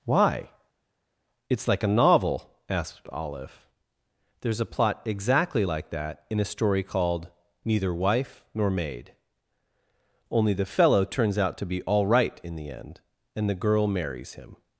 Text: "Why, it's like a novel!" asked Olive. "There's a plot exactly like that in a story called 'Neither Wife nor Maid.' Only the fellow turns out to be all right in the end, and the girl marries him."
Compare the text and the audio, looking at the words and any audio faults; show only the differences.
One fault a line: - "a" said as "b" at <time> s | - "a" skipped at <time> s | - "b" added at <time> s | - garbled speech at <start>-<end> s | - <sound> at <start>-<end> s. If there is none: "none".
none